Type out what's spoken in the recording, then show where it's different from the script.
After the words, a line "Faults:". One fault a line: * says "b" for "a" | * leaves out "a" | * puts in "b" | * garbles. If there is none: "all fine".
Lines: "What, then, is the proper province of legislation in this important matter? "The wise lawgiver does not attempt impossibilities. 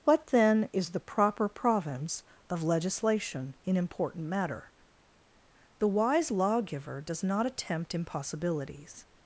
"What, then, is the proper province of legislation in important matter? "The wise lawgiver does not attempt impossibilities.
Faults:
* leaves out "this"